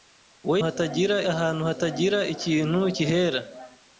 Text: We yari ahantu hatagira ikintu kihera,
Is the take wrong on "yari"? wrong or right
wrong